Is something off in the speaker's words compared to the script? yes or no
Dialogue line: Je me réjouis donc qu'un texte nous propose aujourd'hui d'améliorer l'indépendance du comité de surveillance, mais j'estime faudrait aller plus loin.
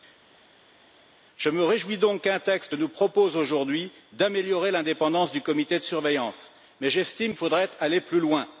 no